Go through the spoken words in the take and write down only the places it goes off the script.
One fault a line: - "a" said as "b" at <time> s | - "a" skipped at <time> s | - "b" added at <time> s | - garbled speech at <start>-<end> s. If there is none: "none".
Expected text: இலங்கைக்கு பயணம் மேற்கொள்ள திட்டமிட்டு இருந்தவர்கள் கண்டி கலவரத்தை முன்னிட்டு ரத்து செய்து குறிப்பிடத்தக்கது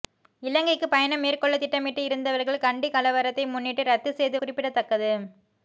none